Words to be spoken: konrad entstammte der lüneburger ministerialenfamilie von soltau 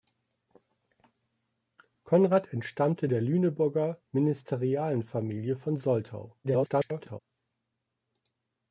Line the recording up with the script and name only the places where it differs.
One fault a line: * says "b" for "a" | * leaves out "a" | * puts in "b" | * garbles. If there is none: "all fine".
* garbles